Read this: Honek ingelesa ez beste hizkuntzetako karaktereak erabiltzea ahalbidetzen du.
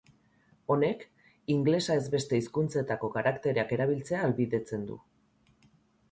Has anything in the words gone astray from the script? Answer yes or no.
no